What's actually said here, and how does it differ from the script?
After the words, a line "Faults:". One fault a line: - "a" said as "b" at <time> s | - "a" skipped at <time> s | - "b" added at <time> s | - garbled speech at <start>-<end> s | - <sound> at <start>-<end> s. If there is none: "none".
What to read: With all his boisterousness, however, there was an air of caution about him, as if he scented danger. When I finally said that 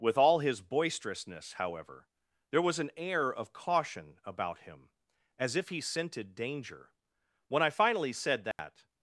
With all his boisterousness, however, there was an air of caution about him, as if he scented danger. When I finally said that
Faults:
- dropout at 8.5-8.6 s